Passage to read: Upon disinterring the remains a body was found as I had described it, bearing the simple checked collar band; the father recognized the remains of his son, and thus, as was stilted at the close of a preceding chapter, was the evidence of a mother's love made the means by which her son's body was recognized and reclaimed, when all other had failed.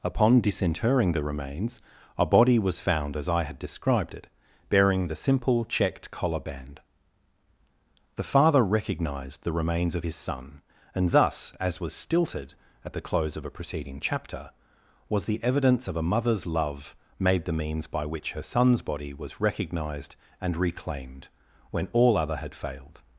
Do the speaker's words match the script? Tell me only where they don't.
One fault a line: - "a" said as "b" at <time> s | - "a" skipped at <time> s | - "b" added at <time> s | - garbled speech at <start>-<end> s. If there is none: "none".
none